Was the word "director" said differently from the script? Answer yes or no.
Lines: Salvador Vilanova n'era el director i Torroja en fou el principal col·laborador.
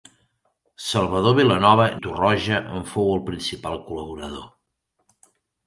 yes